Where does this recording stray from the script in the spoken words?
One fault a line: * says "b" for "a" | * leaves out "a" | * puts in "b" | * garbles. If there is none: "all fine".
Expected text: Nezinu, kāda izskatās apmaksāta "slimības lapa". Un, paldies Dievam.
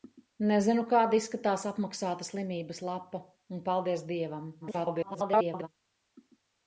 * garbles